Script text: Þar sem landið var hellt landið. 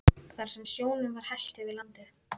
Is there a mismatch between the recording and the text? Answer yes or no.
yes